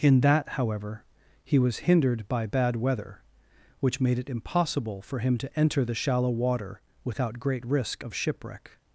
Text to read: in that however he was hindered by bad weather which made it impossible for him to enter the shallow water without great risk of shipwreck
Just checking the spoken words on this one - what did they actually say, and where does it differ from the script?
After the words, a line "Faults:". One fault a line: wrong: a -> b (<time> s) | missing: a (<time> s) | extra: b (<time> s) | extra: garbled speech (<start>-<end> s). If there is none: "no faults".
in that however he was hindered by bad weather which made it impossible for him to enter the shallow water without great risk of shipwreck
Faults:
no faults